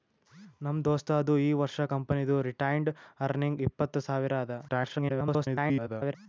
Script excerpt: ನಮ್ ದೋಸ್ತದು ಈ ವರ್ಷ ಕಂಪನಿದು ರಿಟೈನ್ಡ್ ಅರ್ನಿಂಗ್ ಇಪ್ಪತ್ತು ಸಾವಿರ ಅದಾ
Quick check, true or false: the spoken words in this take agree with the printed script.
false